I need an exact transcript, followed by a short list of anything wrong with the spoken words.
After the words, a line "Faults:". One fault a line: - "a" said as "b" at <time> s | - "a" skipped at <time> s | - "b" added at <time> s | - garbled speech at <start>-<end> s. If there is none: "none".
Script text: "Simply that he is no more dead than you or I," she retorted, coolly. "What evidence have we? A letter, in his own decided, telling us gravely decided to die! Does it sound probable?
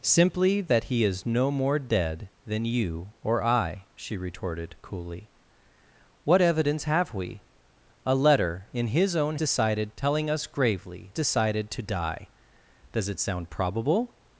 "Simply that he is no more dead than you or I," she retorted, coolly. "What evidence have we? A letter, in his own decided, telling us gravely decided to die! Does it sound probable?
Faults:
none